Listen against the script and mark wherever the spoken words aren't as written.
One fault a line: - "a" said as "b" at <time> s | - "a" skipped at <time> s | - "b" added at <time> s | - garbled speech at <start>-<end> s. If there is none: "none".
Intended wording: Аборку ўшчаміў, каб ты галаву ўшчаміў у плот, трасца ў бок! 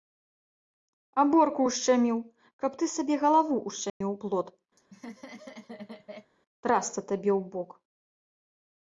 - "сабе" added at 3.0 s
- "табе" added at 7.1 s